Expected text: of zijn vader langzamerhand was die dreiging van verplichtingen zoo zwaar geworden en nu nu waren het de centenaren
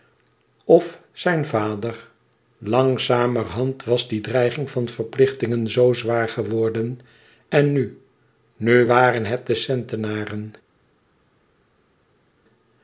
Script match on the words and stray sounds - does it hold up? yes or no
yes